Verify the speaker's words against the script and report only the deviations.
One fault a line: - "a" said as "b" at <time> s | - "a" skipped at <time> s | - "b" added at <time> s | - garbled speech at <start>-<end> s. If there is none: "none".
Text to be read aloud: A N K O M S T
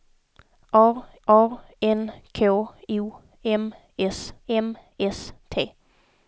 - "a" added at 1.3 s
- "M S" added at 4.5 s